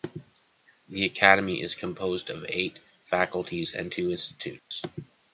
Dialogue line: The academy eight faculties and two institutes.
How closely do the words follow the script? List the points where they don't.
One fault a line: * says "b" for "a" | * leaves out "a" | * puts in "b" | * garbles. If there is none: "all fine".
* puts in "is composed of"